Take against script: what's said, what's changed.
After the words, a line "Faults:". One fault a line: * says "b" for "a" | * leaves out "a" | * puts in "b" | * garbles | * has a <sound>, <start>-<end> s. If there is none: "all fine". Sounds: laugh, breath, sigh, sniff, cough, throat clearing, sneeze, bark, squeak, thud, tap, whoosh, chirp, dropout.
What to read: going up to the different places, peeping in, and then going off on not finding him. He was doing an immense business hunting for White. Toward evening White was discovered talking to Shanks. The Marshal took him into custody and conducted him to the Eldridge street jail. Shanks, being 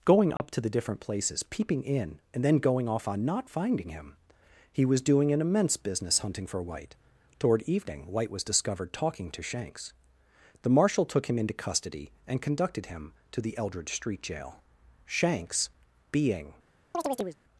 going up to the different places, peeping in, and then going off on not finding him. He was doing an immense business hunting for White. Toward evening White was discovered talking to Shanks. The Marshal took him into custody and conducted him to the Eldridge street jail. Shanks, being
Faults:
* has a dropout, 0.4-0.4 s
* has a chirp, 16.9-17.4 s